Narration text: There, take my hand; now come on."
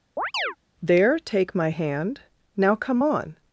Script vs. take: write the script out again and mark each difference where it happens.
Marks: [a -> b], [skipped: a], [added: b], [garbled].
There, take my hand; now come on."